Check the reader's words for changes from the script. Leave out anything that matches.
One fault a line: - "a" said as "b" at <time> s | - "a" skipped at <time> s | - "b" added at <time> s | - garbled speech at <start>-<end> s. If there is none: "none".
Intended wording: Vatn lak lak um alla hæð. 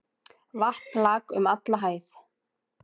- "lak" skipped at 1.2 s